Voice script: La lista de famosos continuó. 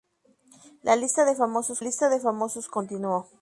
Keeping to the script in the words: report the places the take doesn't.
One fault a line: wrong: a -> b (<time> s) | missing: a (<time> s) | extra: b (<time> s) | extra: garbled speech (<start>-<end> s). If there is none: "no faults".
extra: lista de famosos (1.8 s)